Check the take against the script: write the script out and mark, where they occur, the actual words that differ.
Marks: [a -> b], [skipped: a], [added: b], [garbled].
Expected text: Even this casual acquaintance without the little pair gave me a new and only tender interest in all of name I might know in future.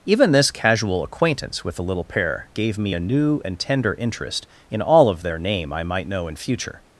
Even this casual acquaintance [without -> with] the little pair gave me a new and [skipped: only] tender interest in all of [added: their] name I might know in future.